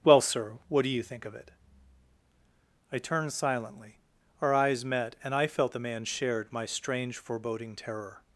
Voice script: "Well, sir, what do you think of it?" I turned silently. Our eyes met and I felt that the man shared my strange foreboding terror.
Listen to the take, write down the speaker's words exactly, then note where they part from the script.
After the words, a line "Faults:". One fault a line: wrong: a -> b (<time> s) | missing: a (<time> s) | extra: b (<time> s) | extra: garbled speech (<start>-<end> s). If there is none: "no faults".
"Well, sir, what do you think of it?" I turned silently. Our eyes met and I felt the man shared my strange foreboding terror.
Faults:
missing: that (5.7 s)